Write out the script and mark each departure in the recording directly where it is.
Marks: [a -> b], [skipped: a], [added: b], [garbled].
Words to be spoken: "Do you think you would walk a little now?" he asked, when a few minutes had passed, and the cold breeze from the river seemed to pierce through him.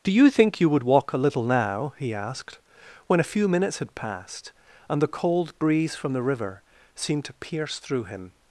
"Do you think you would walk a little now?" he asked, when a few minutes had passed, and the cold breeze from the river seemed to pierce through him.